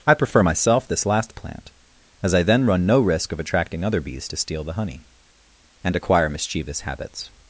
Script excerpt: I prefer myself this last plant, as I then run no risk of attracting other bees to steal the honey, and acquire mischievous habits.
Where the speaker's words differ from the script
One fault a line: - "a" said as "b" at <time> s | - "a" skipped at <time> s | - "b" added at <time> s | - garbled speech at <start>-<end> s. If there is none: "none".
none